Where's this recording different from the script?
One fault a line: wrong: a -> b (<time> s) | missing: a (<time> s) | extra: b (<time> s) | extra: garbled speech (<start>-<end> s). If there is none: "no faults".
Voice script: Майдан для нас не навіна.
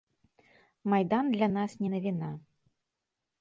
no faults